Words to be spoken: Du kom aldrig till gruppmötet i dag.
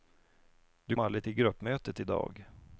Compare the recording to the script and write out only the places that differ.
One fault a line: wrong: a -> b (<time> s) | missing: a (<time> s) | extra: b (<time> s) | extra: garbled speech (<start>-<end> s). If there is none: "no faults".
missing: kom (0.9 s)